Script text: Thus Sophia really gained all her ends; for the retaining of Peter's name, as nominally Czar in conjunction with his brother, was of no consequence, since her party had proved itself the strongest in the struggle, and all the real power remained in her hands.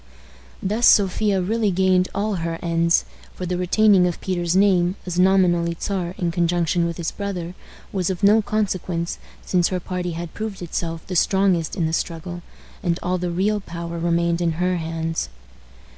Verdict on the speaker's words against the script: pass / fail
pass